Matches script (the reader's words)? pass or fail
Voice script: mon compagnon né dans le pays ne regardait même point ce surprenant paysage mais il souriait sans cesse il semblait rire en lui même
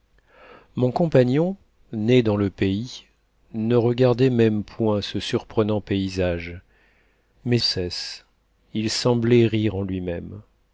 fail